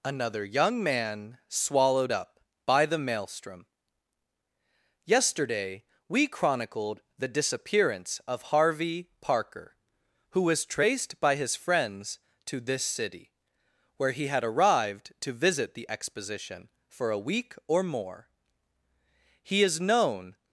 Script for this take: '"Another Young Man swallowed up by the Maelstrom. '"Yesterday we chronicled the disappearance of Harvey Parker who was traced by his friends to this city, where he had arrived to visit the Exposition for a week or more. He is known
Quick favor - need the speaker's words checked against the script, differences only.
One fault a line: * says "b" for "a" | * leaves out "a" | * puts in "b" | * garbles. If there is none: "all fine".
all fine